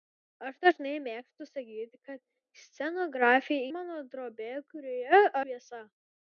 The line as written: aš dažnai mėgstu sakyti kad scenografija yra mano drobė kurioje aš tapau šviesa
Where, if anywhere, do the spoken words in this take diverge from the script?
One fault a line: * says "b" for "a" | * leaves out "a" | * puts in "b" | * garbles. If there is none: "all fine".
* leaves out "yra"
* leaves out "aš tapau"